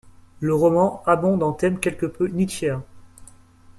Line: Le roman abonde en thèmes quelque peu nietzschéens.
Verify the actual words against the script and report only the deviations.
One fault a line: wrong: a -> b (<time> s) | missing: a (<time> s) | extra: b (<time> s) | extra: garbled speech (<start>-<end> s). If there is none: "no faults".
no faults